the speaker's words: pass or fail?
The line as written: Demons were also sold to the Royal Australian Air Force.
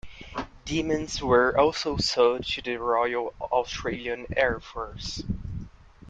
pass